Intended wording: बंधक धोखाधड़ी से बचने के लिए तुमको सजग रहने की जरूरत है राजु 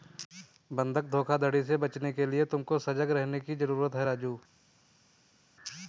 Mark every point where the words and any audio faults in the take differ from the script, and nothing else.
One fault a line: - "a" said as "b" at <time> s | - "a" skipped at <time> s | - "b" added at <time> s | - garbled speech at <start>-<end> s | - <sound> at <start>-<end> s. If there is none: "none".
none